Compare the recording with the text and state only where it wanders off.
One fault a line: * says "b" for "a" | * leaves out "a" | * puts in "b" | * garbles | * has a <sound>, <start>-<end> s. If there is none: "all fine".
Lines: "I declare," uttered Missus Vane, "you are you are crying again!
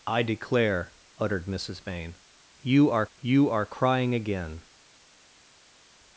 all fine